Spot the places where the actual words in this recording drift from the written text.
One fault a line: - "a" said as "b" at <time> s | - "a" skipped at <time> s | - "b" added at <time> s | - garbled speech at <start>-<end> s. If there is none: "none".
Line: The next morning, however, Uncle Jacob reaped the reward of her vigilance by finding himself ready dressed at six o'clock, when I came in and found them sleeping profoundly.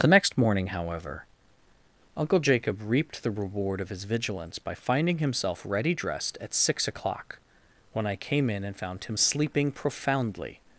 - "her" said as "his" at 3.9 s
- "them" said as "him" at 9.0 s